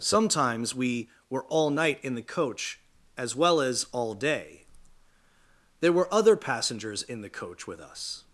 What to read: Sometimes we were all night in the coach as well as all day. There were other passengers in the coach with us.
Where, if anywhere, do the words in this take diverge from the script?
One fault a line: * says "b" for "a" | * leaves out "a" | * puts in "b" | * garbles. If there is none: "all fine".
all fine